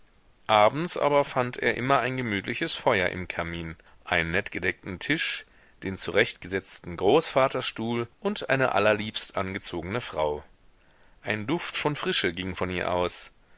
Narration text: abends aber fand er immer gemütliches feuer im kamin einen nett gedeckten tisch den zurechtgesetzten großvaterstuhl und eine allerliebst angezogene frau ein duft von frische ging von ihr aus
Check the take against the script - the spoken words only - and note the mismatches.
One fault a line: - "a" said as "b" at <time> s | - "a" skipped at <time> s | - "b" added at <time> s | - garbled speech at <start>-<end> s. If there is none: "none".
- "ein" added at 2.0 s